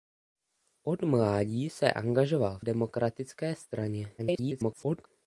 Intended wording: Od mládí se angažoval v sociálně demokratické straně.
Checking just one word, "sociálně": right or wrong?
wrong